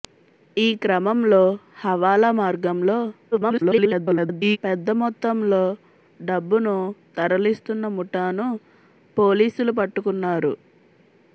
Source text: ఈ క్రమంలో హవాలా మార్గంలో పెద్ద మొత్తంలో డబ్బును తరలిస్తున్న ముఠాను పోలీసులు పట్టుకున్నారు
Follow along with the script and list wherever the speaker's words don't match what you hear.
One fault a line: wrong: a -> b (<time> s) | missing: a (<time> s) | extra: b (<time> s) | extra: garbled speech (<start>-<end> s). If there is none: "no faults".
extra: garbled speech (3.3-4.6 s)